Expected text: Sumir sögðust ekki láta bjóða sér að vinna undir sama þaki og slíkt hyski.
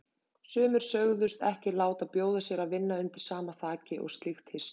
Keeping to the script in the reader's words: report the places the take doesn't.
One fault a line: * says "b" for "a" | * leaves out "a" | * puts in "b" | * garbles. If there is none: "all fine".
all fine